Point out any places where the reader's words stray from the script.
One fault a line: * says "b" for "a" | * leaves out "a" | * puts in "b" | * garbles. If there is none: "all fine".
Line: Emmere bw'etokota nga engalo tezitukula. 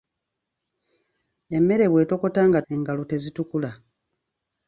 all fine